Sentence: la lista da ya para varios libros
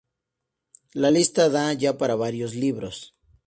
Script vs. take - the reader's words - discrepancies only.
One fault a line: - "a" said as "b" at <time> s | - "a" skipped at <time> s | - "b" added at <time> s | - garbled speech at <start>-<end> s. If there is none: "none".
none